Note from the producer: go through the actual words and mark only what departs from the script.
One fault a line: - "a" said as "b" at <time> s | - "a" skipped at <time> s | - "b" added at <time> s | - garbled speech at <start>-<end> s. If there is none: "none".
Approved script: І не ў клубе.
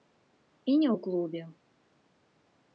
none